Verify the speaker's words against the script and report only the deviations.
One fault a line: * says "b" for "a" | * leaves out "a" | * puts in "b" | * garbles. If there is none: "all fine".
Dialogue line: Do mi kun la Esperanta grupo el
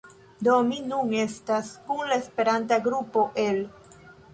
* puts in "nun estas"